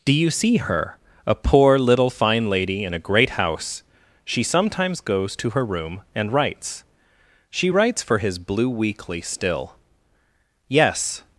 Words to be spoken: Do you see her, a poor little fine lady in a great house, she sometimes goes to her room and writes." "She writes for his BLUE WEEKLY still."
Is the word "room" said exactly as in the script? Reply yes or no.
yes